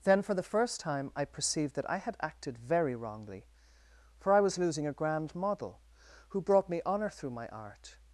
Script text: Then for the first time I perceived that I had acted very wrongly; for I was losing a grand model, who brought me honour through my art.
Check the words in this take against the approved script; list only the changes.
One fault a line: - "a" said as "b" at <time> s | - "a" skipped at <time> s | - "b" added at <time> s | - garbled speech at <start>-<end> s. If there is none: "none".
none